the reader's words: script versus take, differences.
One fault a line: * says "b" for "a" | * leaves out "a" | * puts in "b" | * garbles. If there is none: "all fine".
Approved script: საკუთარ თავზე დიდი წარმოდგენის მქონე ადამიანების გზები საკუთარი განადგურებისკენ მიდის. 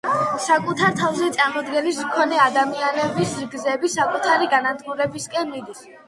* leaves out "დიდი"